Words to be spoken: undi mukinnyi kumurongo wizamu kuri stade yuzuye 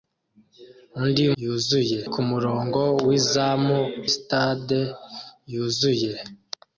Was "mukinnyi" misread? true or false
true